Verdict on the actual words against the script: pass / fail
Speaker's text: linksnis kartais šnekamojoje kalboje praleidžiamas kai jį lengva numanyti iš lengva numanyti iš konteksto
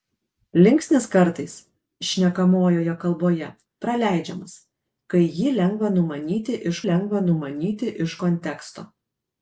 pass